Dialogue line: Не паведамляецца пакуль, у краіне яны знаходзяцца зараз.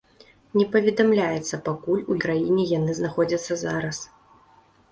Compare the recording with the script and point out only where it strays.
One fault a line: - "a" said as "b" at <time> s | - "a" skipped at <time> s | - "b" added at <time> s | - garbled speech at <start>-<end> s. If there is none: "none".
none